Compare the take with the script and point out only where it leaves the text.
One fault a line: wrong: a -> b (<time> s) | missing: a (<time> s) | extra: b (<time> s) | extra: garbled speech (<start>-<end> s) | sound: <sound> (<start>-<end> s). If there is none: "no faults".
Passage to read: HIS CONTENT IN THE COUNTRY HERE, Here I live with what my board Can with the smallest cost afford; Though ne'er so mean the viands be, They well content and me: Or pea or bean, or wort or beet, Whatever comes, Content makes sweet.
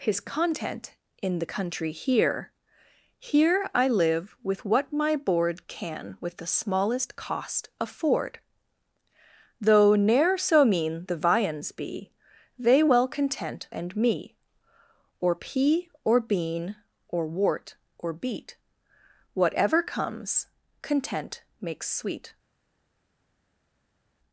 no faults